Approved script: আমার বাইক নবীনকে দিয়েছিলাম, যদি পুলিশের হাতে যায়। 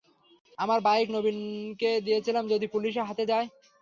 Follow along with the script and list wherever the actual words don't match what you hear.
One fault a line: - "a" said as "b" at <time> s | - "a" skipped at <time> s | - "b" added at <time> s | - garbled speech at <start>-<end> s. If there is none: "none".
none